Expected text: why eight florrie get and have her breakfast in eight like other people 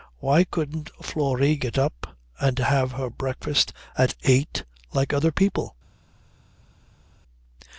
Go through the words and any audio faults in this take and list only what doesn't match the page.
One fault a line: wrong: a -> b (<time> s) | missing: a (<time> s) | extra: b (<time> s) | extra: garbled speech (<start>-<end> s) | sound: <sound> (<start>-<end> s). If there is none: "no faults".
wrong: eight -> couldn't (0.5 s)
extra: up (1.8 s)
wrong: in -> at (4.0 s)